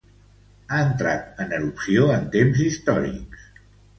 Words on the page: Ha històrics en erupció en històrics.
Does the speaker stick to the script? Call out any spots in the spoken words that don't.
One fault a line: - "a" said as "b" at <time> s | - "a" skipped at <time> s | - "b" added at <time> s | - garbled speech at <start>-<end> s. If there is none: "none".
- "històrics" said as "entrat" at 0.8 s
- "temps" added at 2.4 s